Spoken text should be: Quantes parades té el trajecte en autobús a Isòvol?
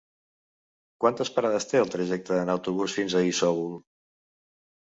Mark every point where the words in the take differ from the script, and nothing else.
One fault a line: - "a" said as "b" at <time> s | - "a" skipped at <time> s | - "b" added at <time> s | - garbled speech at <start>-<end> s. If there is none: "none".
- "fins" added at 3.0 s